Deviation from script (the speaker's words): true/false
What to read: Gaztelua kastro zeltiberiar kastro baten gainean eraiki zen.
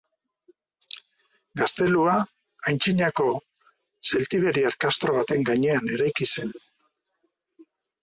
true